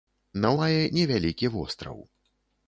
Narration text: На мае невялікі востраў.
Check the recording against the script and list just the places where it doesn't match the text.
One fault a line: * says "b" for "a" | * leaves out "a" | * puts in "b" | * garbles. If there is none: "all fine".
all fine